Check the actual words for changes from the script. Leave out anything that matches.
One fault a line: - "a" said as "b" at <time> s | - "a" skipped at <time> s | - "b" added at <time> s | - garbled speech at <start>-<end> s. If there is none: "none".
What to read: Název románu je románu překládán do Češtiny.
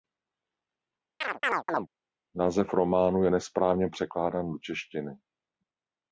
- "románu" said as "nesprávně" at 3.3 s